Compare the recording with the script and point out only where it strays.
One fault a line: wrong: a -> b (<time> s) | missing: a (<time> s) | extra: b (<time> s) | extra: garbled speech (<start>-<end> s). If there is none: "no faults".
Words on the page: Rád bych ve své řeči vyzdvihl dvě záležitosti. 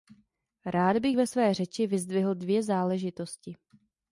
no faults